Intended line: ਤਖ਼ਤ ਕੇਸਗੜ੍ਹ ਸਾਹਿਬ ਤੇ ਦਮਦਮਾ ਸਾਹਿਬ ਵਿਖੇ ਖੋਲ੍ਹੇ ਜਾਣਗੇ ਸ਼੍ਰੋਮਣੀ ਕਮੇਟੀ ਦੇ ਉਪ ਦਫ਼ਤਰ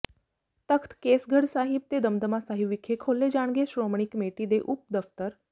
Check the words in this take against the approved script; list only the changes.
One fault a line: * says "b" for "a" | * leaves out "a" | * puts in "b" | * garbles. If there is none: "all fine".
all fine